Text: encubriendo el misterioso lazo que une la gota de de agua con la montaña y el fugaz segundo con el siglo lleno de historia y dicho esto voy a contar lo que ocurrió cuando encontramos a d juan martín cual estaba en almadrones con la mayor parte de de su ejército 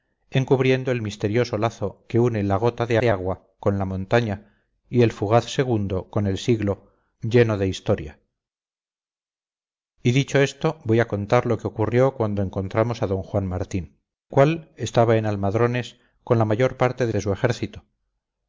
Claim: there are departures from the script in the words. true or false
false